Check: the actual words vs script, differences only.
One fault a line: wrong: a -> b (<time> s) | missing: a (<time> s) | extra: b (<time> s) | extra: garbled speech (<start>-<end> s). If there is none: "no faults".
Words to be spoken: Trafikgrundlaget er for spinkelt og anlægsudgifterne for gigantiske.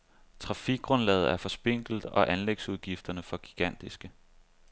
no faults